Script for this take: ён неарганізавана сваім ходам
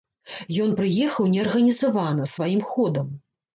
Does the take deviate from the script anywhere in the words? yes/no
yes